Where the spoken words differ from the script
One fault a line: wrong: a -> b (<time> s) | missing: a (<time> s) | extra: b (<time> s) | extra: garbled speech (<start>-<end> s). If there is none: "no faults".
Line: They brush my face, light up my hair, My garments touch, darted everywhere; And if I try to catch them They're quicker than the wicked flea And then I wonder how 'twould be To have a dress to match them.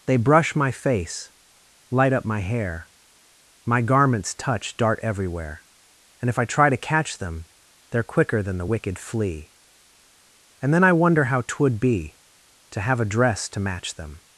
wrong: darted -> dart (4.8 s)